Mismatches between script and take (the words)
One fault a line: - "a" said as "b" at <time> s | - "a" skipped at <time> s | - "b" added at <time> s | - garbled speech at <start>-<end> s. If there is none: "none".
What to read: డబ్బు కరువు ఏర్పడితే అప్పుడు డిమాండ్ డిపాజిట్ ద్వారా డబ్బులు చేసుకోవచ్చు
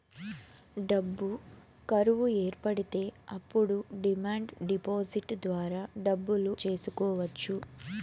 none